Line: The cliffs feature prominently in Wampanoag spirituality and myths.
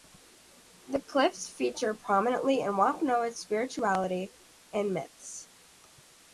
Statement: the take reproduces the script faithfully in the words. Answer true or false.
true